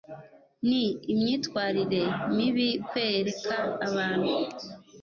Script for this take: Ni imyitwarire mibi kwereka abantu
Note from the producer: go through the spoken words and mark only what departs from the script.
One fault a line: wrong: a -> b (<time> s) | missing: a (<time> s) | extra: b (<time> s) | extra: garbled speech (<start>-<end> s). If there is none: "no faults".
no faults